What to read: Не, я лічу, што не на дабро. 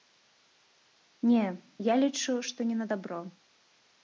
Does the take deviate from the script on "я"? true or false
false